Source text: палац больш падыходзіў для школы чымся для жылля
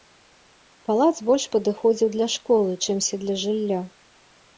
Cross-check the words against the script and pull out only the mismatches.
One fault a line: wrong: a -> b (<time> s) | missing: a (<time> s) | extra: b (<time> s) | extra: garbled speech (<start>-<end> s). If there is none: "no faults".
no faults